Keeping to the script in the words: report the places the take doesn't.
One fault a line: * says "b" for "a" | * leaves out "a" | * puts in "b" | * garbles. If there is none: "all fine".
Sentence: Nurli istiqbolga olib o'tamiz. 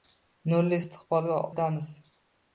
* leaves out "olib"